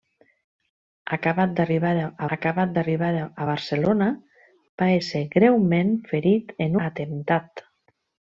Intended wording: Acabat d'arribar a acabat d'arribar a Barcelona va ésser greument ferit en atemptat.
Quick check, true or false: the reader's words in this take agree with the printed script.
true